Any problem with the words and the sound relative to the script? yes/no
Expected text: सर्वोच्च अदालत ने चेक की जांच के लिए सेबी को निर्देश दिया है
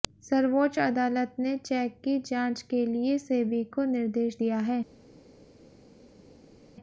no